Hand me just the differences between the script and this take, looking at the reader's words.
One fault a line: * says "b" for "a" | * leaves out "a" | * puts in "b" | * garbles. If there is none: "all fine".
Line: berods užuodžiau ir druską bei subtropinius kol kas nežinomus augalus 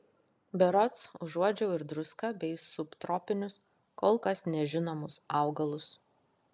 all fine